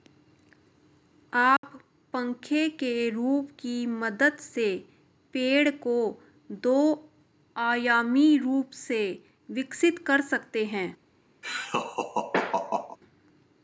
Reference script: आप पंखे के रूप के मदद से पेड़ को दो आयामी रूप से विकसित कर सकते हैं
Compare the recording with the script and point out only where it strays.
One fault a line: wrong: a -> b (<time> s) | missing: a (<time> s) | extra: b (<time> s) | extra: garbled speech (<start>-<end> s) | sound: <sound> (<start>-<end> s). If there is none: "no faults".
sound: dropout (1.6-1.6 s)
wrong: के -> की (3.6 s)
sound: laugh (11.4-13.0 s)